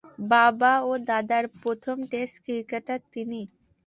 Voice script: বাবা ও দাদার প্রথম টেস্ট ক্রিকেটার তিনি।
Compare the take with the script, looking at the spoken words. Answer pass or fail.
pass